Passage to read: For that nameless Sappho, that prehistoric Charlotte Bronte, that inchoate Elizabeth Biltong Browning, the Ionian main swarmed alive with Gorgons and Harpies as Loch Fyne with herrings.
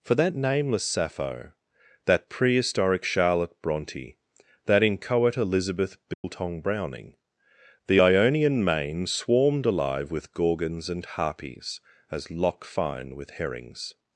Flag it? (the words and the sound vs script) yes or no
yes